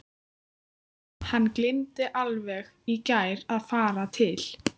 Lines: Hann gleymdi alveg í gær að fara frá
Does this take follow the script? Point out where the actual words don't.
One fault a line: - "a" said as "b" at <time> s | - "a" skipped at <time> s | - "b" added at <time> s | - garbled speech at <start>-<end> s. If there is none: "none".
- "frá" said as "til" at 4.2 s